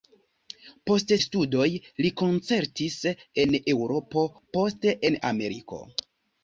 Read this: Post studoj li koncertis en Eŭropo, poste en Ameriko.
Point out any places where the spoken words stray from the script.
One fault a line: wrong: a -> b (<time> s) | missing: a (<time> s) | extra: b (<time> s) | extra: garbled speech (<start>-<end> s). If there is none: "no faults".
no faults